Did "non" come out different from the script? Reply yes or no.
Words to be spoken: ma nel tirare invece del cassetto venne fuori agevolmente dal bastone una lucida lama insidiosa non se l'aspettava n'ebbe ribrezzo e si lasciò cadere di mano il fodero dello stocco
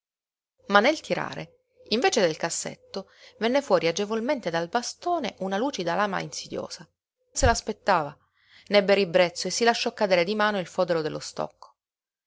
yes